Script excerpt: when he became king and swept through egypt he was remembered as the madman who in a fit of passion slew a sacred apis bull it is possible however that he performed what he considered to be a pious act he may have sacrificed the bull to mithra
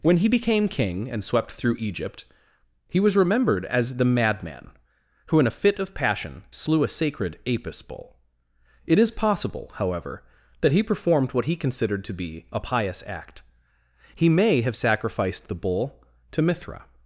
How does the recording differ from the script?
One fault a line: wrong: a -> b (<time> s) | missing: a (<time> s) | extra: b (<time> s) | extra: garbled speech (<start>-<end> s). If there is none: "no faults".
no faults